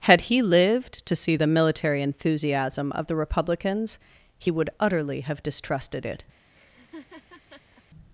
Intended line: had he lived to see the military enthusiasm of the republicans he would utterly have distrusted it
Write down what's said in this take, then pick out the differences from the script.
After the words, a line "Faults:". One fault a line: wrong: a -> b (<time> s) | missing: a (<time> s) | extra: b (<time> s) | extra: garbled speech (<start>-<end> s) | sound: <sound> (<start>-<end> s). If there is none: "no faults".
had he lived to see the military enthusiasm of the republicans he would utterly have distrusted it
Faults:
sound: laugh (6.5-7.8 s)